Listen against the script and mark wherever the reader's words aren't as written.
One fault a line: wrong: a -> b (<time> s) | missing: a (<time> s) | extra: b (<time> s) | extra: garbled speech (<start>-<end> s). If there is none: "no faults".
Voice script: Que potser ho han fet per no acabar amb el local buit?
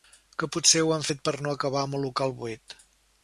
no faults